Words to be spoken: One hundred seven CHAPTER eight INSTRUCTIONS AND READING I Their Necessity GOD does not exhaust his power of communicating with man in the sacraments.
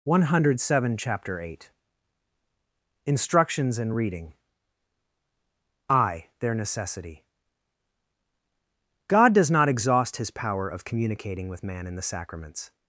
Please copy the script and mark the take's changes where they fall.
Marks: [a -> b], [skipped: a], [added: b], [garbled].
One hundred seven CHAPTER eight INSTRUCTIONS AND READING I Their Necessity GOD does not exhaust his power of communicating with man in the sacraments.